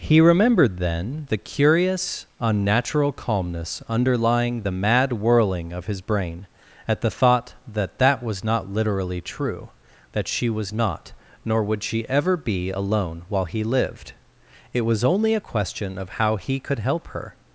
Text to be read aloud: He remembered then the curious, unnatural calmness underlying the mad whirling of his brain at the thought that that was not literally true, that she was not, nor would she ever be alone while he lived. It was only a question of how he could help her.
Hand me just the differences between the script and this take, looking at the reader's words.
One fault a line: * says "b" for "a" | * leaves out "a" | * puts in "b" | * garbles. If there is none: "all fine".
all fine